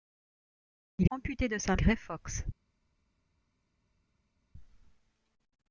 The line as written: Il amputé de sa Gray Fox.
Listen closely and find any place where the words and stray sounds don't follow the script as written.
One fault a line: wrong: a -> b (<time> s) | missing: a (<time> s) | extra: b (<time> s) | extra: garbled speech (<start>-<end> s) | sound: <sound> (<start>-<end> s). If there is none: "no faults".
no faults